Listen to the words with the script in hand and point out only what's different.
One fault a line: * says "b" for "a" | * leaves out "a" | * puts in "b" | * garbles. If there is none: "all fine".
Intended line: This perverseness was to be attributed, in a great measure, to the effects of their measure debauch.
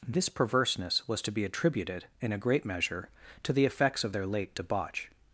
* says "late" for "measure"